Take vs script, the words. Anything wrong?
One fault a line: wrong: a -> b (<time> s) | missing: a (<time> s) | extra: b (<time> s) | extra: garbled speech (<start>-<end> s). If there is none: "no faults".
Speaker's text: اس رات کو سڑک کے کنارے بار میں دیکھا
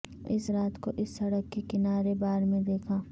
extra: اس (1.0 s)